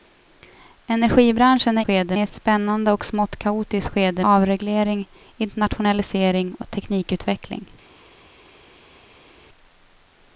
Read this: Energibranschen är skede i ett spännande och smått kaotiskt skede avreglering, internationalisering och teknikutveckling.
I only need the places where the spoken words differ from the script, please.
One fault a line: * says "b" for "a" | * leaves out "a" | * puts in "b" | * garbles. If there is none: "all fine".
all fine